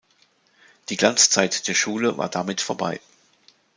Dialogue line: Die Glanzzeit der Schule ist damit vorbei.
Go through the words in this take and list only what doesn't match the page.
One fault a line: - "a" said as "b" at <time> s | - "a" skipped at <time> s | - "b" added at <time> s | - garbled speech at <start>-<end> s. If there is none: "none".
- "ist" said as "war" at 2.2 s